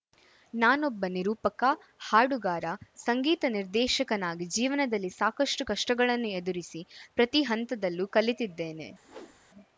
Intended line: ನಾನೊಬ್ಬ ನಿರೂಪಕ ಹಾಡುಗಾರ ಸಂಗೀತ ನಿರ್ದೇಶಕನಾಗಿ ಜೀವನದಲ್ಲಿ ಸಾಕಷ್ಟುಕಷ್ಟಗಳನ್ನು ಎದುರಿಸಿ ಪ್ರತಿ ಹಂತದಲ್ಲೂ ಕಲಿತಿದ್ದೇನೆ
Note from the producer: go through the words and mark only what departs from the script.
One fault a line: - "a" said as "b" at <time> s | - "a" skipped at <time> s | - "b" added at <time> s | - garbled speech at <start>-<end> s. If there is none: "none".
none